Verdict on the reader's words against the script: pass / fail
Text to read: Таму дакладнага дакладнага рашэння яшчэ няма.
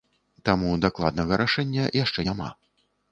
fail